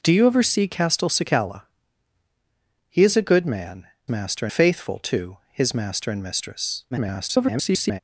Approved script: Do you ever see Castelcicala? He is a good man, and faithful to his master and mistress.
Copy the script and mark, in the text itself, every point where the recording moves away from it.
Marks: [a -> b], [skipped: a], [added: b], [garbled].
Do you ever see Castelcicala? He is a good man, [and -> master] faithful to his master and mistress. [garbled]